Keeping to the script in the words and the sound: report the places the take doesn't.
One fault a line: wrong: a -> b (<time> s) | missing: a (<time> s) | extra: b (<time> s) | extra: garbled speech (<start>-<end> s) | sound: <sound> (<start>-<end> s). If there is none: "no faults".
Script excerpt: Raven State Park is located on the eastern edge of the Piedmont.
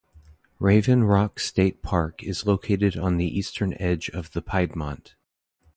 extra: Rock (1.0 s)